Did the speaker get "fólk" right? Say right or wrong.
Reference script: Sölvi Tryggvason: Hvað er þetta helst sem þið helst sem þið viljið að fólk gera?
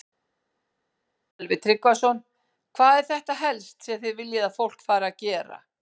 wrong